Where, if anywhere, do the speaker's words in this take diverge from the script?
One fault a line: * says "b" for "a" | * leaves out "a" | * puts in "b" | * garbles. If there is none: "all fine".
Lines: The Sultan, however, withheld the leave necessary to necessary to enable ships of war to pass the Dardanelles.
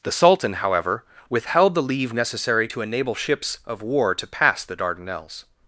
* leaves out "necessary to"